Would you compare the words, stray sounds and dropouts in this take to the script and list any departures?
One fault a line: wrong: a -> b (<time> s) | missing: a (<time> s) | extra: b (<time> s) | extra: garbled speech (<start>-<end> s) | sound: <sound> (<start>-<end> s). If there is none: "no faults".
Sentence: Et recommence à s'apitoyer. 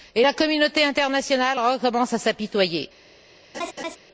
extra: la communauté internationale (0.2 s)
sound: laugh (3.5-4.0 s)